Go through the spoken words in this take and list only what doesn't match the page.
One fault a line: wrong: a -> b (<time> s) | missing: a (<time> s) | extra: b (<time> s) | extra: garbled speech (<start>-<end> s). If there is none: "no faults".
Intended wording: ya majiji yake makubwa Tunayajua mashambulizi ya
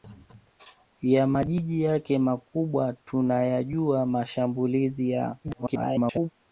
extra: garbled speech (5.4-6.3 s)